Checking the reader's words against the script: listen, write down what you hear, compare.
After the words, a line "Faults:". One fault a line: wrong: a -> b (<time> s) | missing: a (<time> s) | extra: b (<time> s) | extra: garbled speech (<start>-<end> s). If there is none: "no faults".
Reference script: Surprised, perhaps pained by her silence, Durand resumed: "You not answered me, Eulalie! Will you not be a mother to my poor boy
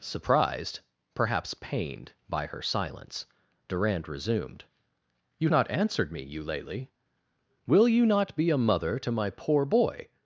Surprised, perhaps pained by her silence, Durand resumed: "You not answered me, Eulalie! Will you not be a mother to my poor boy
Faults:
no faults